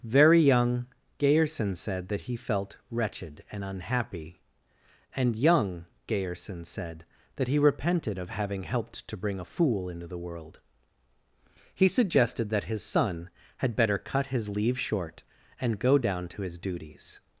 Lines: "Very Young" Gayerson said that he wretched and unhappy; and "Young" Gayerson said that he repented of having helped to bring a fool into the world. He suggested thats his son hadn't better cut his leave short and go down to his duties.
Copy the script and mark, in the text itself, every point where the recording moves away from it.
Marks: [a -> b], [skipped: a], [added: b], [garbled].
"Very Young" Gayerson said that he [added: felt] wretched and unhappy; and "Young" Gayerson said that he repented of having helped to bring a fool into the world. He suggested [thats -> that] his son [hadn't -> had] better cut his leave short and go down to his duties.